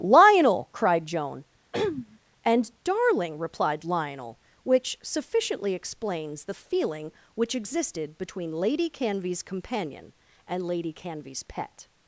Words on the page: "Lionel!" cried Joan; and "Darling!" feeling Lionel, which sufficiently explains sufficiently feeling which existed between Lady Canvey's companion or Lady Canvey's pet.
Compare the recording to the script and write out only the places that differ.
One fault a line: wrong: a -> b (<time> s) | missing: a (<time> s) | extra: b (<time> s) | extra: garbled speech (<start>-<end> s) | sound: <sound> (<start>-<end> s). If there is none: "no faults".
sound: throat clearing (1.7-2.2 s)
wrong: feeling -> replied (3.4 s)
wrong: sufficiently -> the (6.4 s)
wrong: or -> and (10.5 s)